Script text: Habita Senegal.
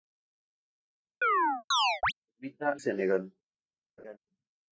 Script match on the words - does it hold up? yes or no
yes